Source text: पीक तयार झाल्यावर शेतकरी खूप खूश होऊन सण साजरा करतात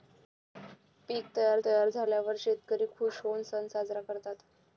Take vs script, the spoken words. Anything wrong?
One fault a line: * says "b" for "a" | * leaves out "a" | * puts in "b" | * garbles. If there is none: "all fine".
* puts in "तयार"
* leaves out "खूप"